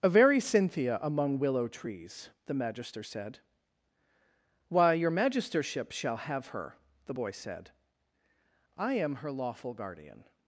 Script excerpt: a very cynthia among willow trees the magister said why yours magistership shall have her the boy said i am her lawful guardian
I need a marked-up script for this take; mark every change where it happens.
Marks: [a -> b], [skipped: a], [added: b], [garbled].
a very cynthia among willow trees the magister said why [yours -> your] magistership shall have her the boy said i am her lawful guardian